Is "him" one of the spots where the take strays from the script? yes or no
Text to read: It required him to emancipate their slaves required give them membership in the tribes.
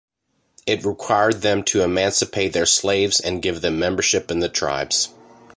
yes